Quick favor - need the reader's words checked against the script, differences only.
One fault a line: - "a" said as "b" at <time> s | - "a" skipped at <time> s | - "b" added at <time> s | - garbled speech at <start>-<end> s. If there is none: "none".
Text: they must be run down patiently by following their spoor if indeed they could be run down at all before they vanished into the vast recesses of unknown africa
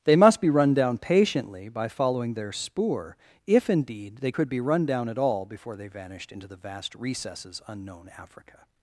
- "of" skipped at 7.6 s